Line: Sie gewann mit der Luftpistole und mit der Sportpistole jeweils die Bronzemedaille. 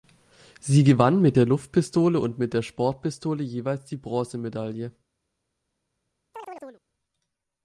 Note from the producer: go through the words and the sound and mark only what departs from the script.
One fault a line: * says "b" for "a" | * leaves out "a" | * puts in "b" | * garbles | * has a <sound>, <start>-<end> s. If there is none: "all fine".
* has a chirp, 6.3-6.8 s